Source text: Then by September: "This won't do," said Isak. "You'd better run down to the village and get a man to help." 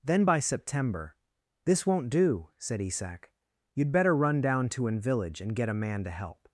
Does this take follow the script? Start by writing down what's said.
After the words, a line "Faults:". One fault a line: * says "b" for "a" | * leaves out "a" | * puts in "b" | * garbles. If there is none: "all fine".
Then by September: "This won't do," said Isak. "You'd better run down to an village and get a man to help."
Faults:
* says "an" for "the"